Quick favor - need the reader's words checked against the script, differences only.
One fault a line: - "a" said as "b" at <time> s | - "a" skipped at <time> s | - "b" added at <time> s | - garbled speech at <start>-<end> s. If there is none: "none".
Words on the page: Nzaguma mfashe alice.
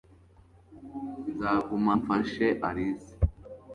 none